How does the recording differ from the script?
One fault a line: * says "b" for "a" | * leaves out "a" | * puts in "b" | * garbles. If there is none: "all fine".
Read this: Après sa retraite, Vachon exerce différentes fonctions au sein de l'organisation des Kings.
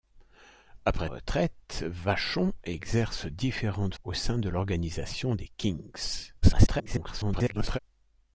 * leaves out "sa"
* leaves out "fonctions"
* garbles